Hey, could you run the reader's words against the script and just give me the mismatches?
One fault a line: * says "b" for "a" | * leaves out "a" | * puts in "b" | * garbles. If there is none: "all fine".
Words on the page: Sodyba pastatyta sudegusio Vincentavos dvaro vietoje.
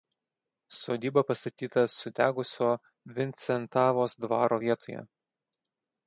all fine